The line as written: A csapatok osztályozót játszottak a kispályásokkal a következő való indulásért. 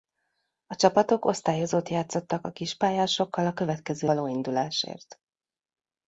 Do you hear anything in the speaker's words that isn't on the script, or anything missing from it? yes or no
no